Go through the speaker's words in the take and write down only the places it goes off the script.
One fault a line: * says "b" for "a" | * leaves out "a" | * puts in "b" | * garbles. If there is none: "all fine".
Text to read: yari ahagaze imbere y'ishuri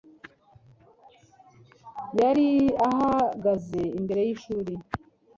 all fine